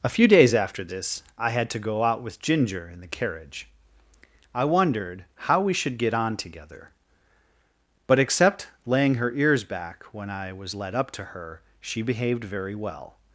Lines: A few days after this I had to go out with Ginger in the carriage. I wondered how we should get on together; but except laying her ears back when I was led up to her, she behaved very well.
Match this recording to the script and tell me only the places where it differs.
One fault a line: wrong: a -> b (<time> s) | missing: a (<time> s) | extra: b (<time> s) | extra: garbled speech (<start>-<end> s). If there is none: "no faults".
no faults